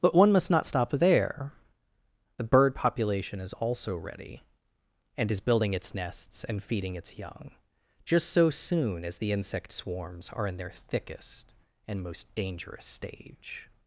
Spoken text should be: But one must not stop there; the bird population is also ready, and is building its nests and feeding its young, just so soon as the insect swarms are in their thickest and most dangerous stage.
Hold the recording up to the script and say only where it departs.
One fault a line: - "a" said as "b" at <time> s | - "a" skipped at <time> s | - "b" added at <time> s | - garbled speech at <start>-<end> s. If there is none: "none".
none